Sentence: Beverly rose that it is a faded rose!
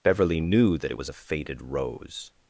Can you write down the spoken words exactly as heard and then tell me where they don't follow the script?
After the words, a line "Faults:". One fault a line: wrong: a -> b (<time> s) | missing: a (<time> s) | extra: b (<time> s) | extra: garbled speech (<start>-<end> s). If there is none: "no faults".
Beverly knew that it was a faded rose!
Faults:
wrong: rose -> knew (0.4 s)
wrong: is -> was (0.9 s)